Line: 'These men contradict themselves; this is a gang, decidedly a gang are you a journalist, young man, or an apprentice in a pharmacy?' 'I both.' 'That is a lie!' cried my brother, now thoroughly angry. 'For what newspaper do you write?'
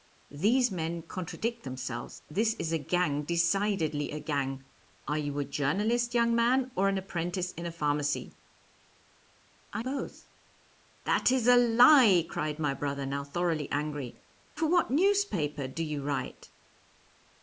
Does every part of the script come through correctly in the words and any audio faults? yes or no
yes